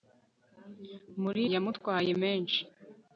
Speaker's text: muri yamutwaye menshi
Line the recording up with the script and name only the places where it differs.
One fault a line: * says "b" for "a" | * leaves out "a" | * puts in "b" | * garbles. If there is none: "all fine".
all fine